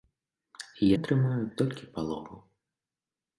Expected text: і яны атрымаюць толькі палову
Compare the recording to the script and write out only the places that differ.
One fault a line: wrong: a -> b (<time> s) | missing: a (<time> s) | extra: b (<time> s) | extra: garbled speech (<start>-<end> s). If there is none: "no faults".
missing: яны (0.9 s)